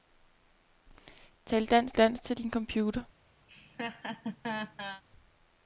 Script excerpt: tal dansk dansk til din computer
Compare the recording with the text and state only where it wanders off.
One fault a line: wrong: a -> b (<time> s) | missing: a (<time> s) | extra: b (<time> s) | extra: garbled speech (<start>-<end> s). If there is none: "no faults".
no faults